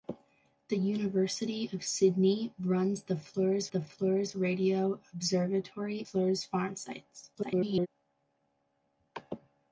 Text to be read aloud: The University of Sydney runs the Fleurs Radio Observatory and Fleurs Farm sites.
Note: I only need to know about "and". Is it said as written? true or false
false